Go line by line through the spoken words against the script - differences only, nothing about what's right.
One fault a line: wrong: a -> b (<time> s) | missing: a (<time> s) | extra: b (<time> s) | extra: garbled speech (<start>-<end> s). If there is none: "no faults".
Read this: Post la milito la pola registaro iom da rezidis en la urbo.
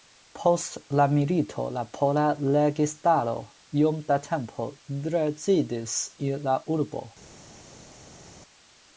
extra: tempo (4.3 s)